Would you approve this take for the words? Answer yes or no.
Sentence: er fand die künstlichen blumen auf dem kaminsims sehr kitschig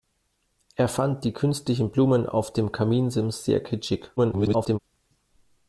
no